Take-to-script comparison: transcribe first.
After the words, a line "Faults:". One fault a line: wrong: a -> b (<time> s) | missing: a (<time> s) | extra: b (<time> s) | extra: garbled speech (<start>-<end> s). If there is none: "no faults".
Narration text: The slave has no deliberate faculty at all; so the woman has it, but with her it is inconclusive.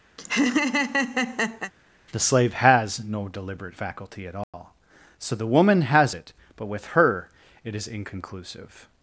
The slave has no deliberate faculty at all; so the woman has it, but with her it is inconclusive.
Faults:
no faults